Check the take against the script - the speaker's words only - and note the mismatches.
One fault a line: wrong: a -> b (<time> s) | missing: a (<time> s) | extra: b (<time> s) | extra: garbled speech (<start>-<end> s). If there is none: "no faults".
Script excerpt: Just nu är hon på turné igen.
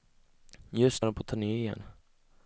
missing: nu (1.0 s)